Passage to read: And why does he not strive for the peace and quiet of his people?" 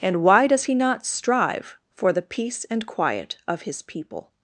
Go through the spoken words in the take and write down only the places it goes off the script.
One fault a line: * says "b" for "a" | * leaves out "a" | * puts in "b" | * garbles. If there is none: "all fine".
all fine